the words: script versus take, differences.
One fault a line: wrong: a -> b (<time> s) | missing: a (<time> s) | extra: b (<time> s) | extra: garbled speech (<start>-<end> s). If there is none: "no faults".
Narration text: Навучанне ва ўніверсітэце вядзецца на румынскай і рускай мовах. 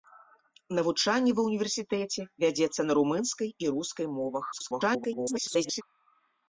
extra: garbled speech (4.5-5.8 s)